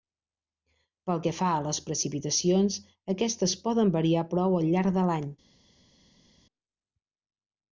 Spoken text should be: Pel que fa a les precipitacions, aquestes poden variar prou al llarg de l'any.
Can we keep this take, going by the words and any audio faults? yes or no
yes